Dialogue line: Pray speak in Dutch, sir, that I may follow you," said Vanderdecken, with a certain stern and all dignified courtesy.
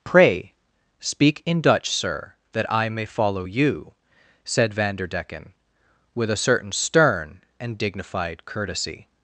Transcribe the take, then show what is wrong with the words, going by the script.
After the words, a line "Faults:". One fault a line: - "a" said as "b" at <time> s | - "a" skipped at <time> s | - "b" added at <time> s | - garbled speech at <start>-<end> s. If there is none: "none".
Pray speak in Dutch, sir, that I may follow you," said Vanderdecken, with a certain stern and dignified courtesy.
Faults:
- "all" skipped at 7.8 s